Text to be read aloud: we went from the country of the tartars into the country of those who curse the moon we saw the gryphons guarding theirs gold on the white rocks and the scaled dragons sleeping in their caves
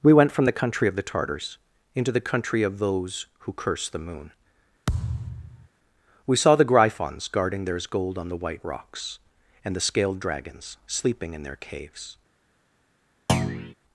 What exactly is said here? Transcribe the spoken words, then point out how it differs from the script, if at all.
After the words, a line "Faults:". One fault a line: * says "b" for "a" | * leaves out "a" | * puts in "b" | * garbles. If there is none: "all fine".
we went from the country of the tartars into the country of those who curse the moon we saw the gryphons guarding theirs gold on the white rocks and the scaled dragons sleeping in their caves
Faults:
all fine